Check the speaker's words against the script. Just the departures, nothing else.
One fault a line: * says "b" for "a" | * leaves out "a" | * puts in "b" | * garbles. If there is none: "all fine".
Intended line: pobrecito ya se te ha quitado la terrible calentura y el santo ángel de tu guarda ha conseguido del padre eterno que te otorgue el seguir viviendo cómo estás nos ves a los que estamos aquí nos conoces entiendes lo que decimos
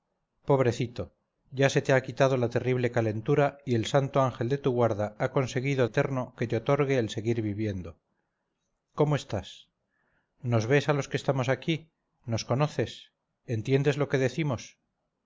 * leaves out "del padre"